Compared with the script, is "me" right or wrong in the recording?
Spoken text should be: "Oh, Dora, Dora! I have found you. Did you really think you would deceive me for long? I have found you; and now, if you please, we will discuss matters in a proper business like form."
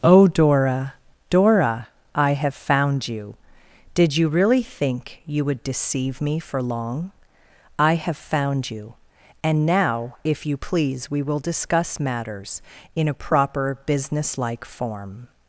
right